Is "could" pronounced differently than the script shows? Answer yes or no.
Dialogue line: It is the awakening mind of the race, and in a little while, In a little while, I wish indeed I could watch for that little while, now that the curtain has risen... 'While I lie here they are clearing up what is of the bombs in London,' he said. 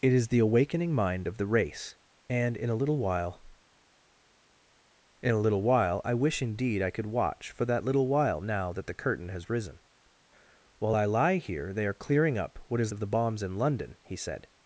no